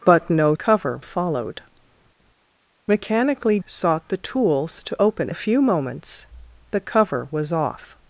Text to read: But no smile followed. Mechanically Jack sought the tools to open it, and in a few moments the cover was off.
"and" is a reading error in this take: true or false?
true